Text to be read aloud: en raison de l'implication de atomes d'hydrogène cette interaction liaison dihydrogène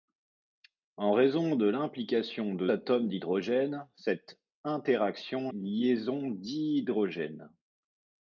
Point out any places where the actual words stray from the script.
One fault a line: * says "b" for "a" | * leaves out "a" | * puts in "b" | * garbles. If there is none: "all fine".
all fine